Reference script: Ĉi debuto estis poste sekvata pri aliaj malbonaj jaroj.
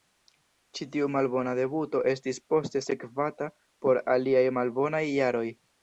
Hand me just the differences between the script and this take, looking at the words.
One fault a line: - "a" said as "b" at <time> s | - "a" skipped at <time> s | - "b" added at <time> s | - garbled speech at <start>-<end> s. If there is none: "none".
- "tiu malbona" added at 0.9 s
- "pri" said as "por" at 3.9 s